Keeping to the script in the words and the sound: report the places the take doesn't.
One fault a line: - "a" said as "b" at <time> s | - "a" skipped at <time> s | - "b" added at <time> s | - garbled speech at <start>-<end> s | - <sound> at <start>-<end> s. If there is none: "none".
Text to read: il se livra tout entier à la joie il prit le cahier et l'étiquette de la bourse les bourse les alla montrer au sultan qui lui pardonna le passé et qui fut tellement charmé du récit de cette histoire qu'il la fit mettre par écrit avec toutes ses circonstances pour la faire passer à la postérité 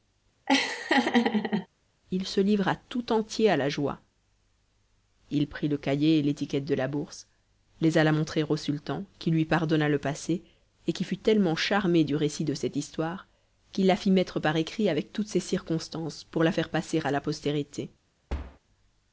- laugh at 0.5-1.7 s
- "bourse les" skipped at 8.0 s
- thud at 18.3-18.6 s